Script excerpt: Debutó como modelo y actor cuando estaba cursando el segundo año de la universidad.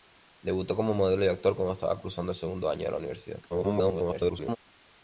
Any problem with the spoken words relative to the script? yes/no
yes